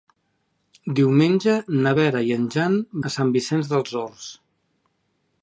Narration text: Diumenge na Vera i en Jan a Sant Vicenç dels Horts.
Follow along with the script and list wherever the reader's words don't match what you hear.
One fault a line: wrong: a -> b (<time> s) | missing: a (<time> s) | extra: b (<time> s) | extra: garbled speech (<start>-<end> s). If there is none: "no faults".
no faults